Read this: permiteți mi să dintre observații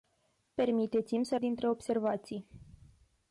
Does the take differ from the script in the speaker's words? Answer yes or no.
no